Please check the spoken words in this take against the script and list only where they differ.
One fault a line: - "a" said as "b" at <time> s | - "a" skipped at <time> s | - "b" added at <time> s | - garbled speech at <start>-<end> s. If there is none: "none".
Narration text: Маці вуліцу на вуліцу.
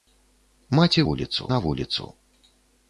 none